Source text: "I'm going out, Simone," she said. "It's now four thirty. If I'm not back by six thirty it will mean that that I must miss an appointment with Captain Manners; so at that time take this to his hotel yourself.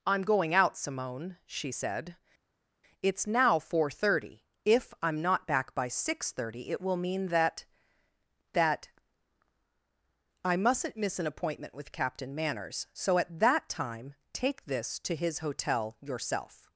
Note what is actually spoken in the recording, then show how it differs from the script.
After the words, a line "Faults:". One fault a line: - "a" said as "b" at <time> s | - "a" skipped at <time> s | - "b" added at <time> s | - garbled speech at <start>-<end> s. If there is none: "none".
"I'm going out, Simone," she said. "It's now four thirty. If I'm not back by six thirty it will mean that that I mustn't miss an appointment with Captain Manners; so at that time take this to his hotel yourself.
Faults:
- "must" said as "mustn't" at 10.5 s